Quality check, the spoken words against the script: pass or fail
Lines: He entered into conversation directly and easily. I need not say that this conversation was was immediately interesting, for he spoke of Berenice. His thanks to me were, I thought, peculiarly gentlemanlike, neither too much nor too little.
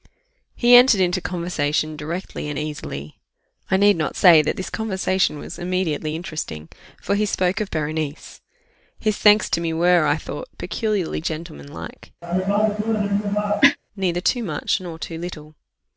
fail